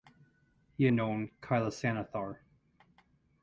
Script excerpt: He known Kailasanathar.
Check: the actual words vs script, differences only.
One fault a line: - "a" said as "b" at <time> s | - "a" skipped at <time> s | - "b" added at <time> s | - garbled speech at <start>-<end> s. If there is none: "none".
none